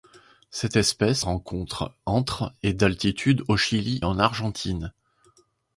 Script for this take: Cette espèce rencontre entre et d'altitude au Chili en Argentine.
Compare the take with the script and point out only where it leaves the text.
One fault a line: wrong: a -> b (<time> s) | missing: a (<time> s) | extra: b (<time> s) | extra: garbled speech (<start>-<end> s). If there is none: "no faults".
no faults